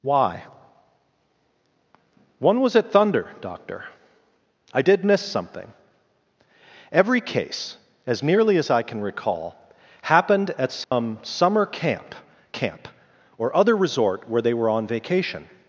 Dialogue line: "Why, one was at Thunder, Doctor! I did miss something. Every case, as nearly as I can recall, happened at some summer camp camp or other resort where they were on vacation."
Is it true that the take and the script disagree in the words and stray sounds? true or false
true